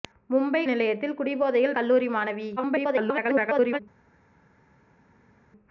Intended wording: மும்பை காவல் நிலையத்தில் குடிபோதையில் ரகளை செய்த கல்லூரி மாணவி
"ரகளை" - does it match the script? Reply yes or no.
no